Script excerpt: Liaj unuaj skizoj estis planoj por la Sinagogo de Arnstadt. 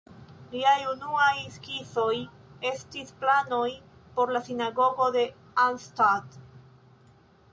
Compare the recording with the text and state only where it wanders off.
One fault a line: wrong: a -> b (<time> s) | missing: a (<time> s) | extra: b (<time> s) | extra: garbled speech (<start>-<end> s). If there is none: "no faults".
no faults